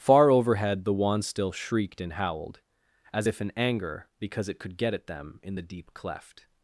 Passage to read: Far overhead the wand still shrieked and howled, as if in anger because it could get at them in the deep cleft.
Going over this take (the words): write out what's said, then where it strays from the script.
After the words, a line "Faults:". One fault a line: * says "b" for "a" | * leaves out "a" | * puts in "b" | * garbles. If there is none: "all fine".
Far overhead the wand still shrieked and howled, as if in anger because it could get at them in the deep cleft.
Faults:
all fine